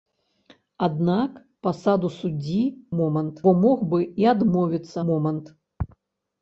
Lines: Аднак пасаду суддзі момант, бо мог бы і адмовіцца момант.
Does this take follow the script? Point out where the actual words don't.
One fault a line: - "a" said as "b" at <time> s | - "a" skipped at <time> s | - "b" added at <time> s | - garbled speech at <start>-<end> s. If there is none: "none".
none